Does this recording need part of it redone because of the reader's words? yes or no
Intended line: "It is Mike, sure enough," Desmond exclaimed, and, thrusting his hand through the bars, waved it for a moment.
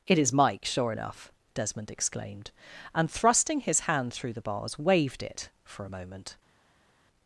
no